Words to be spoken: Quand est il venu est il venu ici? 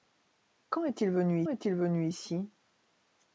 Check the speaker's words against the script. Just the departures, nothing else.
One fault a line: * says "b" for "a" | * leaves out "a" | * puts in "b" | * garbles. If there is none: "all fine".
all fine